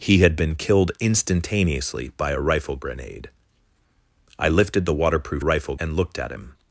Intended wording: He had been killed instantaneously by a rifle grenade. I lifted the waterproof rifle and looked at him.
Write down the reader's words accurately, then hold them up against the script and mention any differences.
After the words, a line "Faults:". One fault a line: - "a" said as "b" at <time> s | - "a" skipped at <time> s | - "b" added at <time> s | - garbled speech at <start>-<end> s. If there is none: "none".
He had been killed instantaneously by a rifle grenade. I lifted the waterproof rifle and looked at him.
Faults:
none